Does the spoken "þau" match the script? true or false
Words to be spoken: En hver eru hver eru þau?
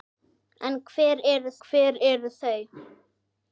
true